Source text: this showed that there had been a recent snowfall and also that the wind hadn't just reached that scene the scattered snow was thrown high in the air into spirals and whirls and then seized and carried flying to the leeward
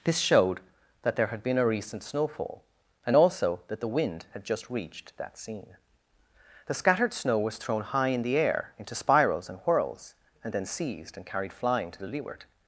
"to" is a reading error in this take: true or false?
false